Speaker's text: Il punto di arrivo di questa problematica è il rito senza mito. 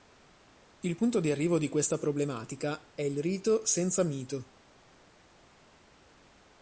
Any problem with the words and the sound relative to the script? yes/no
no